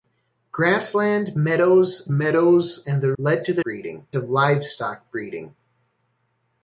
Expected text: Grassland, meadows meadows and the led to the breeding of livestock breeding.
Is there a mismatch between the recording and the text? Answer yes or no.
no